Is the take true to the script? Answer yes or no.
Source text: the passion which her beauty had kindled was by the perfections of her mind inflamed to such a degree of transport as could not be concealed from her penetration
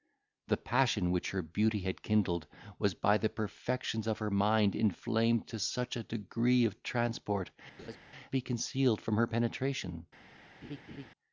no